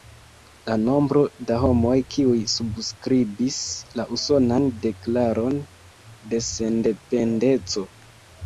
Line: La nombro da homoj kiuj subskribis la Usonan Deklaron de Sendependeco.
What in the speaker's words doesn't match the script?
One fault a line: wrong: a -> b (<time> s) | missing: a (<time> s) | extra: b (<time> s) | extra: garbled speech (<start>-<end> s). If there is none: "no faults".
no faults